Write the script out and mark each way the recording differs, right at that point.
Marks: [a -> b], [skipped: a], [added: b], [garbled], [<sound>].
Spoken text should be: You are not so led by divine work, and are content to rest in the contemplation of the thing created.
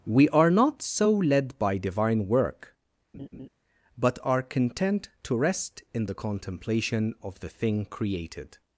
[You -> We] are not so led by divine work, [laugh] [and -> but] are content to rest in the contemplation of the thing created.